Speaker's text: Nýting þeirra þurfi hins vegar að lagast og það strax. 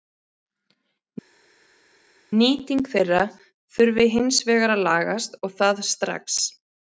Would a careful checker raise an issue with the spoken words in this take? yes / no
no